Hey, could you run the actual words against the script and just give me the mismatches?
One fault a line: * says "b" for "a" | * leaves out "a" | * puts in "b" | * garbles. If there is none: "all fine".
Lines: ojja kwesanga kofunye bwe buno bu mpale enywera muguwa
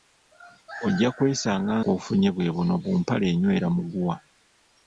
all fine